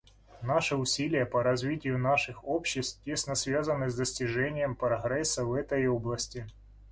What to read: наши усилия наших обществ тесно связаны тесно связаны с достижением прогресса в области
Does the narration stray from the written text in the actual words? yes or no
yes